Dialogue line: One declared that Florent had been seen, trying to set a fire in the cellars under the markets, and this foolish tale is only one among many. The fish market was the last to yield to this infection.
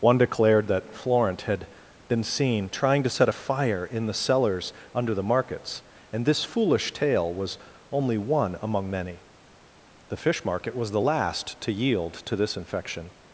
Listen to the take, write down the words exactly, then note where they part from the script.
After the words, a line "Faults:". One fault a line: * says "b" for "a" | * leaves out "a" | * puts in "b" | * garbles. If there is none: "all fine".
One declared that Florent had been seen, trying to set a fire in the cellars under the markets, and this foolish tale was only one among many. The fish market was the last to yield to this infection.
Faults:
* says "was" for "is"